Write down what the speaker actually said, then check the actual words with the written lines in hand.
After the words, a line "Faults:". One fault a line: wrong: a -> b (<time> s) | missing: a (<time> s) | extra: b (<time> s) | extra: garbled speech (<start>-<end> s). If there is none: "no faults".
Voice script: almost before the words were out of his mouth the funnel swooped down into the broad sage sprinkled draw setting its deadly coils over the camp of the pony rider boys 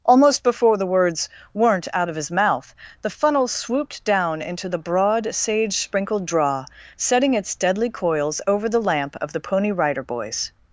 almost before the words weren't out of his mouth the funnel swooped down into the broad sage sprinkled draw setting its deadly coils over the lamp of the pony rider boys
Faults:
wrong: were -> weren't (1.5 s)
wrong: camp -> lamp (8.8 s)